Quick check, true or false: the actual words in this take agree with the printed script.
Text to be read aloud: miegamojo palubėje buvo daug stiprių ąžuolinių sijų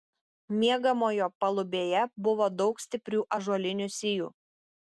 true